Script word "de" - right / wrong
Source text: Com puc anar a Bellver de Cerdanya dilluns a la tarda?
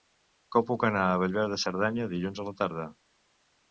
right